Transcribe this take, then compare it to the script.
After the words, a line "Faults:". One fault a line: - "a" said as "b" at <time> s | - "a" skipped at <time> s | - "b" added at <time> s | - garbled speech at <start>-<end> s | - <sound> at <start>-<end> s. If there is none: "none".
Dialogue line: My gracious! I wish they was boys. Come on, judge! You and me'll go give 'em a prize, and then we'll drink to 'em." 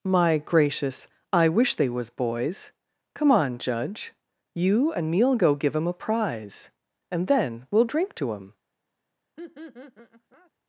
My gracious! I wish they was boys. Come on, judge! You and me'll go give 'em a prize, and then we'll drink to 'em."
Faults:
- laugh at 9.4-10.5 s